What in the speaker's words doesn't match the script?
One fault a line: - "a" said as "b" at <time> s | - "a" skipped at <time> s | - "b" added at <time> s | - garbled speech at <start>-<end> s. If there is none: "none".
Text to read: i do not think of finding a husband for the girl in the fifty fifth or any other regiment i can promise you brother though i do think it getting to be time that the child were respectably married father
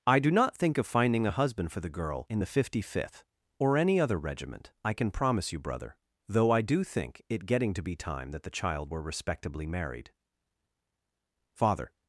none